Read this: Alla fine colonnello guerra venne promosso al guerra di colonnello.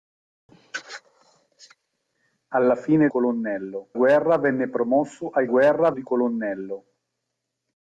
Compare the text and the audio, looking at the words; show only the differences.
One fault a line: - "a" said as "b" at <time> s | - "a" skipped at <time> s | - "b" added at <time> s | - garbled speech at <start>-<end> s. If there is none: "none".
none